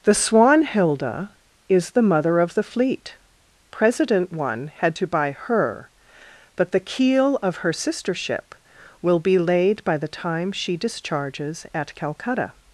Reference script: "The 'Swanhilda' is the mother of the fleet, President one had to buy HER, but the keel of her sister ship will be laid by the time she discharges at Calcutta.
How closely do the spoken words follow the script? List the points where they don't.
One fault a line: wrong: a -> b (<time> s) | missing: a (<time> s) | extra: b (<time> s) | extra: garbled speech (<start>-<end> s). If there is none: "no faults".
no faults